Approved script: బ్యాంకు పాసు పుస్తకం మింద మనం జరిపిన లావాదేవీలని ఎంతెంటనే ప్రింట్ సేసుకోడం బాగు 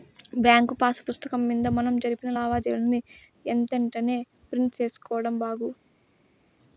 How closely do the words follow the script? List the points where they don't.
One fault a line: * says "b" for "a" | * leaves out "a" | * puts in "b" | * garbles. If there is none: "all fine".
all fine